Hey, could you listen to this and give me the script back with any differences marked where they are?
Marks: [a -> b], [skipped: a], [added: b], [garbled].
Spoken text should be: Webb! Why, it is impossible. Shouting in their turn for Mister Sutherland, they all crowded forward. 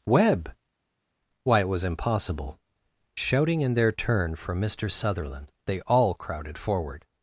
Webb! Why, it [is -> was] impossible. Shouting in their turn for Mister Sutherland, they all crowded forward.